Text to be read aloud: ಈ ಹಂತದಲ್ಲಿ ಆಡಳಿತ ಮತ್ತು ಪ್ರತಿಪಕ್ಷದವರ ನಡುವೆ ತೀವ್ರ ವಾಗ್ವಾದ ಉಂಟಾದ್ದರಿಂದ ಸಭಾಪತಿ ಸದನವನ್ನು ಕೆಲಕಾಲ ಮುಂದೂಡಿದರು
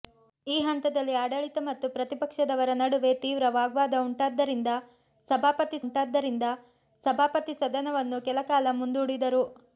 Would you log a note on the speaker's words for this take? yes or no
yes